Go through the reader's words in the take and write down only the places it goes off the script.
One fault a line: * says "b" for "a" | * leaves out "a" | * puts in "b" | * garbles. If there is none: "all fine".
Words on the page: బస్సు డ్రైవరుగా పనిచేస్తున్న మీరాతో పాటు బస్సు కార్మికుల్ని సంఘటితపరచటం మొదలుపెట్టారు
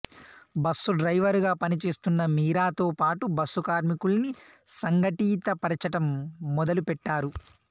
all fine